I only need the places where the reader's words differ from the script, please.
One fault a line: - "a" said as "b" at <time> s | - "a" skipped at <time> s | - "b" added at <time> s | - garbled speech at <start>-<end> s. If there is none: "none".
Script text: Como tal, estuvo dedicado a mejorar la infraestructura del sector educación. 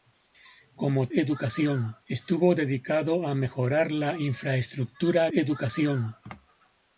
- "tal" said as "educación" at 1.1 s
- "del sector" skipped at 5.3 s